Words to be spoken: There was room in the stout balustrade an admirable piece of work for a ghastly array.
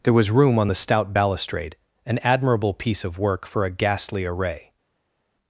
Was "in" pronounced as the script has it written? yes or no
no